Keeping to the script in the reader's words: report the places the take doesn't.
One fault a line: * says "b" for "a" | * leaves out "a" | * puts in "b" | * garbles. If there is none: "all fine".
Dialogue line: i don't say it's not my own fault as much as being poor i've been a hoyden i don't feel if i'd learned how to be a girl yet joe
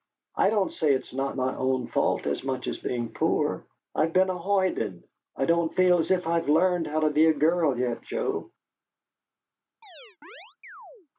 * puts in "as"